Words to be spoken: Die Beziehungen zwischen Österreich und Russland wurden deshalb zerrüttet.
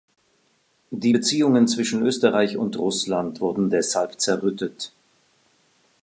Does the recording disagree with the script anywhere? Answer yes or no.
no